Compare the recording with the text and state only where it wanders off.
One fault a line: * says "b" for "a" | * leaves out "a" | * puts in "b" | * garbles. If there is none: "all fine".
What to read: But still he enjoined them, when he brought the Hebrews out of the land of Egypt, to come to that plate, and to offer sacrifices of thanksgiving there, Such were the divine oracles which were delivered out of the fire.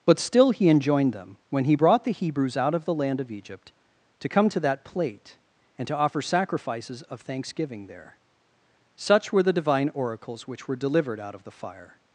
all fine